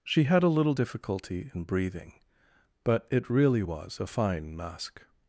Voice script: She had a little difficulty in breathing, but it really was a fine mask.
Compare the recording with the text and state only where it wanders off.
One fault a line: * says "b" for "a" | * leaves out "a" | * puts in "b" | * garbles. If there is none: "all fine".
all fine